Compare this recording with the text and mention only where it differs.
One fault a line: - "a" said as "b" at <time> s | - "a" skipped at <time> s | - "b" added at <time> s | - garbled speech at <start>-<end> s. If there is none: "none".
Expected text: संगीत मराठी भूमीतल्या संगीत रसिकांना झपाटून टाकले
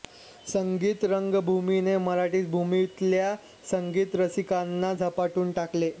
- "रंगभूमीने" added at 1.1 s